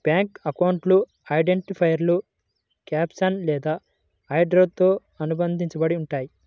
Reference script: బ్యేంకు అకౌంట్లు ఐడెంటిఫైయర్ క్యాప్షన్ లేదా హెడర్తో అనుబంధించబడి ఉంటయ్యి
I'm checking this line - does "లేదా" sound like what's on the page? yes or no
yes